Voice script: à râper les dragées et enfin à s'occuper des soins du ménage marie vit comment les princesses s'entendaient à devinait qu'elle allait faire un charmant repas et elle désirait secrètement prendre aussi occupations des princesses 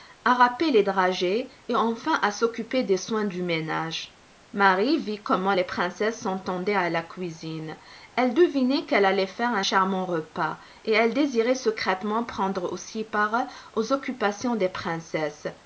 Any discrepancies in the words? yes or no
yes